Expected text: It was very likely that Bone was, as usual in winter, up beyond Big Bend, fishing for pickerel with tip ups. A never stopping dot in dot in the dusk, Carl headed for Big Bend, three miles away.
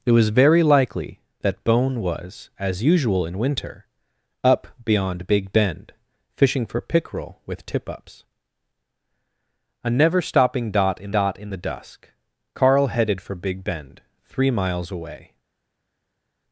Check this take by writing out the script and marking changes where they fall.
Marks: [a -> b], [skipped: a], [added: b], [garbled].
It was very likely that Bone was, as usual in winter, up beyond Big Bend, fishing for pickerel with tip ups. A never stopping dot in dot in the dusk, Carl headed for Big Bend, three miles away.